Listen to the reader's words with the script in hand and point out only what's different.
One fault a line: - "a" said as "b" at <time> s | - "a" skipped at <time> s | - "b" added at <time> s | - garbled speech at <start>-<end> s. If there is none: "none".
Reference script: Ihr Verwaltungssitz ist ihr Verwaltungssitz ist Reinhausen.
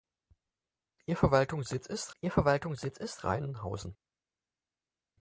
none